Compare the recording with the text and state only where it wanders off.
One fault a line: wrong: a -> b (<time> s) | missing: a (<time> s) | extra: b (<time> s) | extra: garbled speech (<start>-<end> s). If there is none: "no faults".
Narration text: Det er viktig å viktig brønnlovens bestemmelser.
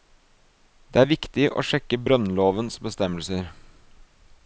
wrong: viktig -> sjekke (1.7 s)